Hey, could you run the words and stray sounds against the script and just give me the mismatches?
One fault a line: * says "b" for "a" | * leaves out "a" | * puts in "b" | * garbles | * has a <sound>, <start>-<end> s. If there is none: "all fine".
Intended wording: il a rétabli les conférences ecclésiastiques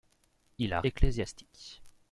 * leaves out "rétabli les conférences"